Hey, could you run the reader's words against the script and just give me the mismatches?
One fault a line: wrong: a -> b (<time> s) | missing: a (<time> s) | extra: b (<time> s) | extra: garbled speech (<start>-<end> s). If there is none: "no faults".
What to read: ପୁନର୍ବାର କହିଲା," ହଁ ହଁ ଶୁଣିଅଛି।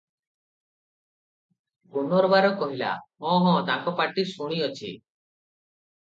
extra: ତାଙ୍କ ପାଟି (3.7 s)